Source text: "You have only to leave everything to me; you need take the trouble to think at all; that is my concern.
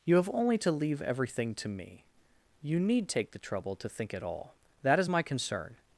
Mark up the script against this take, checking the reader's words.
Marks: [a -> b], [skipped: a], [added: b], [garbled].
"You have only to leave everything to me; you need take the trouble to think at all; that is my concern.